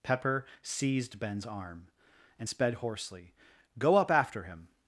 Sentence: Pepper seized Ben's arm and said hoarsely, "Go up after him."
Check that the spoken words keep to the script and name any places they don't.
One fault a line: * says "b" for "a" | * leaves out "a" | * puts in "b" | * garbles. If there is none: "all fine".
* says "sped" for "said"